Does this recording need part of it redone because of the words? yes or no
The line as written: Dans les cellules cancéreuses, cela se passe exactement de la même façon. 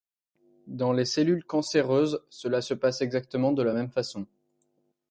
no